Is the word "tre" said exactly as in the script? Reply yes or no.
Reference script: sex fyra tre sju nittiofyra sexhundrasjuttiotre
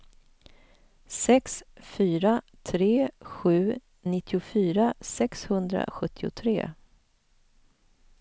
yes